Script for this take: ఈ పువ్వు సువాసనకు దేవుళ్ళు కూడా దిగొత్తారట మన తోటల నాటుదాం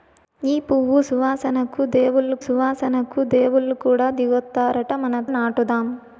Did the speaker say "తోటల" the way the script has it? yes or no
no